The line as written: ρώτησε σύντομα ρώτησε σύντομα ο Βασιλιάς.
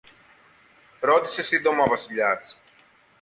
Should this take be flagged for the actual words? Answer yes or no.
yes